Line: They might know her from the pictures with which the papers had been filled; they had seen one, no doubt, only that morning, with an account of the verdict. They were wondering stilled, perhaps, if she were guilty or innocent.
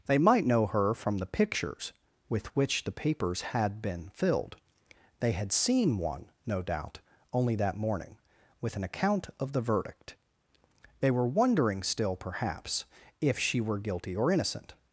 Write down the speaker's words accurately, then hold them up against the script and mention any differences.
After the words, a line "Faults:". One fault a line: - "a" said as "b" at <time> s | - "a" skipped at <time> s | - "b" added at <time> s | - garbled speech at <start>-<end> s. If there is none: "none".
They might know her from the pictures with which the papers had been filled; they had seen one, no doubt, only that morning, with an account of the verdict. They were wondering still, perhaps, if she were guilty or innocent.
Faults:
- "stilled" said as "still" at 11.8 s